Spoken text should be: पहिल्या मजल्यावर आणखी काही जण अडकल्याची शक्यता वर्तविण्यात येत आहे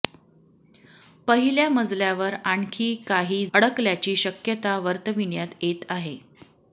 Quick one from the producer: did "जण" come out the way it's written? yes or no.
no